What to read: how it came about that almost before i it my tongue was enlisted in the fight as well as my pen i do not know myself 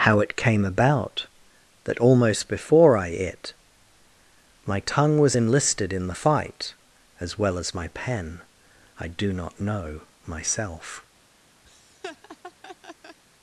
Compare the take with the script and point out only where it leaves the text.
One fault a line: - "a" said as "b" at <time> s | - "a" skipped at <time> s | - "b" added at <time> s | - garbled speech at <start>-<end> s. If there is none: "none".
none